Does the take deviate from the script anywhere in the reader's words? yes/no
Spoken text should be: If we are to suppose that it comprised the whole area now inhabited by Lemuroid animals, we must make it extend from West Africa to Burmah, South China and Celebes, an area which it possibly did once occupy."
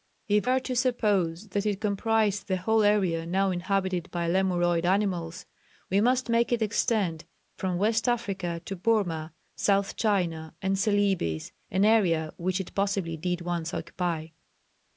yes